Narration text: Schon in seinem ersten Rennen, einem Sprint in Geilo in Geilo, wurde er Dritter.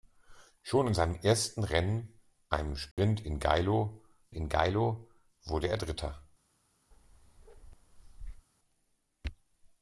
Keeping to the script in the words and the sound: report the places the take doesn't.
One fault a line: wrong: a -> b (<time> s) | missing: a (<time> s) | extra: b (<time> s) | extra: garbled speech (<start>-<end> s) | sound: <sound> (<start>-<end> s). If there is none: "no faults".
sound: dropout (2.9-3.0 s)
sound: bark (6.9-8.5 s)